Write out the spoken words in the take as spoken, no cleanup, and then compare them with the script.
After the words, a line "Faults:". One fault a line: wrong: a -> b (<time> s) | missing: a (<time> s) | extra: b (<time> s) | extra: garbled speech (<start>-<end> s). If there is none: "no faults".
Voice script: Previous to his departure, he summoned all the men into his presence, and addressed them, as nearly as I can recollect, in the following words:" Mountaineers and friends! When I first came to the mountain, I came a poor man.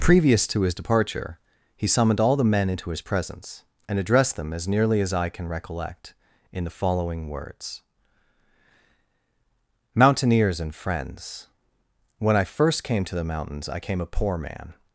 Previous to his departure, he summoned all the men into his presence, and addressed them, as nearly as I can recollect, in the following words:" Mountaineers and friends! When I first came to the mountains, I came a poor man.
Faults:
wrong: mountain -> mountains (13.2 s)